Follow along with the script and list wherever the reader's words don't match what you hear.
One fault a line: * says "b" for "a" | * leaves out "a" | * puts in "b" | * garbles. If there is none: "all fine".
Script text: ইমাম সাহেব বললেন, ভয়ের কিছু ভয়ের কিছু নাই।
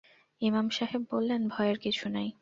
* leaves out "ভয়ের কিছু"